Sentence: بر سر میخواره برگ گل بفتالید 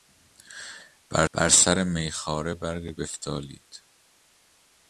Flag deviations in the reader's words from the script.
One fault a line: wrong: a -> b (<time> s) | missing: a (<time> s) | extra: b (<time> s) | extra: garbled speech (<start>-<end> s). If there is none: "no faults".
extra: بر (1.3 s)
missing: گل (2.9 s)